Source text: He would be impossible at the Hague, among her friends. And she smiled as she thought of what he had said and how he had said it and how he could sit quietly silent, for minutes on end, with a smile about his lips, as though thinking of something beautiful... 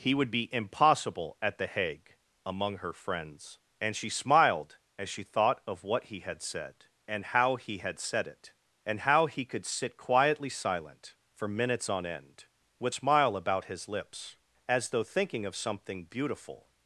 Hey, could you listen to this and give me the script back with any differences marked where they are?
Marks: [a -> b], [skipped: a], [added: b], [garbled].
He would be impossible at the Hague, among her friends. And she smiled as she thought of what he had said and how he had said it and how he could sit quietly silent, for minutes on end, with [skipped: a] smile about his lips, as though thinking of something beautiful...